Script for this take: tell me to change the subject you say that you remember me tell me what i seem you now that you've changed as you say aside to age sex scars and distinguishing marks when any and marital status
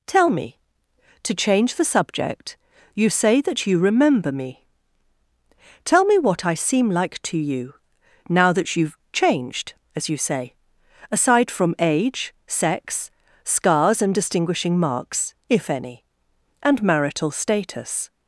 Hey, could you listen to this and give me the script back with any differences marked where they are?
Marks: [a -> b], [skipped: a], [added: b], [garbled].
tell me to change the subject you say that you remember me tell me what i seem [added: like to] you now that you've changed as you say aside [to -> from] age sex scars and distinguishing marks [when -> if] any and marital status